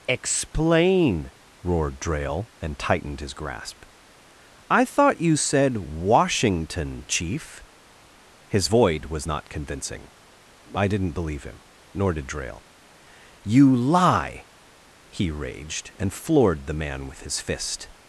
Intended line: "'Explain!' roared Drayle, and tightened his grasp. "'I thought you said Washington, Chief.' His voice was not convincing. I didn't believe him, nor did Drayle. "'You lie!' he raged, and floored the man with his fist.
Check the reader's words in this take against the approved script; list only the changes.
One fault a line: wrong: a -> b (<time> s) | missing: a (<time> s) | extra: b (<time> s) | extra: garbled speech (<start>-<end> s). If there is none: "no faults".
wrong: voice -> void (8.6 s)